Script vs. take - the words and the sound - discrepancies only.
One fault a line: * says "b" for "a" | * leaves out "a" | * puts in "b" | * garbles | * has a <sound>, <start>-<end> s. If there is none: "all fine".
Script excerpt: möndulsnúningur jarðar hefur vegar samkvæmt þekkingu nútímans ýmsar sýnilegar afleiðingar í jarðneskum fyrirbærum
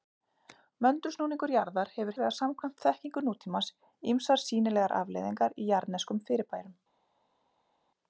all fine